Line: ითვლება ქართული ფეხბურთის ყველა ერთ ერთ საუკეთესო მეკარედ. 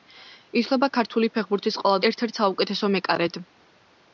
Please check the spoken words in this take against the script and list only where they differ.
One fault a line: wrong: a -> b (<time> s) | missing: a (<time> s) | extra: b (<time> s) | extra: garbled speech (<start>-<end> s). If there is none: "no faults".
no faults